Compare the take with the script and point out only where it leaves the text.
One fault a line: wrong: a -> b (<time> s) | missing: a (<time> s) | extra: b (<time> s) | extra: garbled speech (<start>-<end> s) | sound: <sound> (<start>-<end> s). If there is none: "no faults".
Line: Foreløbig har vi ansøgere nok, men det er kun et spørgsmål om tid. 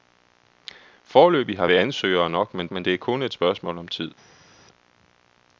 extra: men (2.7 s)